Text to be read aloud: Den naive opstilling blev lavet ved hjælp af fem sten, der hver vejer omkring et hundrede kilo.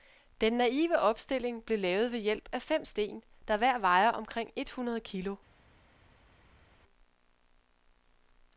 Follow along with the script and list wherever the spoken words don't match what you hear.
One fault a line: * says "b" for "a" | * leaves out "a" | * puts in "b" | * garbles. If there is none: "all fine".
all fine